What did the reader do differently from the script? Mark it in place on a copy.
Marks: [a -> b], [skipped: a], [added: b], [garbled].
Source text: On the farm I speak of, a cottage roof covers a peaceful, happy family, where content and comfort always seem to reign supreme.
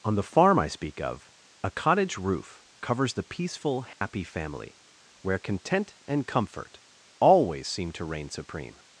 On the farm I speak of, a cottage roof covers [a -> the] peaceful, happy family, where content and comfort always seem to reign supreme.